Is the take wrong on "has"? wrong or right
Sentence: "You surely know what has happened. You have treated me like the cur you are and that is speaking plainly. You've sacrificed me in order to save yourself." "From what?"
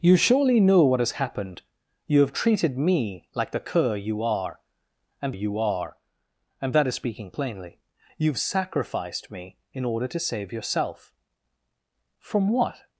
right